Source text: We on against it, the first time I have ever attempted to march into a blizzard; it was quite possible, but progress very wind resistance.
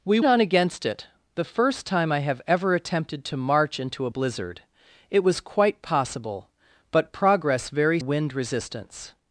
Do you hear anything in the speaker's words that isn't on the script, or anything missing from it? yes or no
no